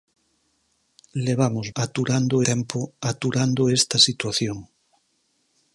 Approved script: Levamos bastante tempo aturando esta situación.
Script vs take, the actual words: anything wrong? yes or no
yes